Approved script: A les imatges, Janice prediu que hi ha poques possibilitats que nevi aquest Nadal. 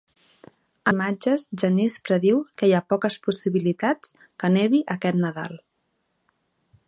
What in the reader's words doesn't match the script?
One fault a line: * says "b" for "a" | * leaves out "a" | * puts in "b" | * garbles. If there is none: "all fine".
* leaves out "les"